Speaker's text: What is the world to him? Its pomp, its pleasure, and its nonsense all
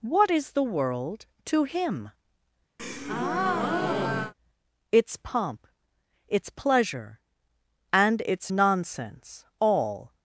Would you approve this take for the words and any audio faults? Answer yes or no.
no